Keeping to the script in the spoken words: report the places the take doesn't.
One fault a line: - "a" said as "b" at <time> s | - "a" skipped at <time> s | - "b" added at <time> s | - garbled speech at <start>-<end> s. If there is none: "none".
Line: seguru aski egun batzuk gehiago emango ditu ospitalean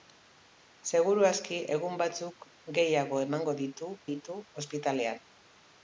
- "ditu" added at 4.1 s